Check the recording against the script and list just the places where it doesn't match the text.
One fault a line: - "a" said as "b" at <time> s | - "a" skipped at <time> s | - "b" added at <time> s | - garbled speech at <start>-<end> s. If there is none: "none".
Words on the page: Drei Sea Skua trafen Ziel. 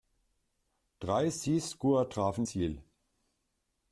none